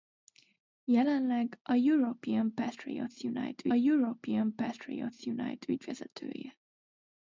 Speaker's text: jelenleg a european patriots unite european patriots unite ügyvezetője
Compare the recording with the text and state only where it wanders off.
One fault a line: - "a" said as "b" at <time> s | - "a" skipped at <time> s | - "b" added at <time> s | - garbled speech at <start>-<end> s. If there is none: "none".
none